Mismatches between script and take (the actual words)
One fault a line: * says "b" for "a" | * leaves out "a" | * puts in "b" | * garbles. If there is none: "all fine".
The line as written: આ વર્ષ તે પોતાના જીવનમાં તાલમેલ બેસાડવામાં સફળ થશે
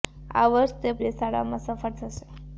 * leaves out "પોતાના જીવનમાં તાલમેલ"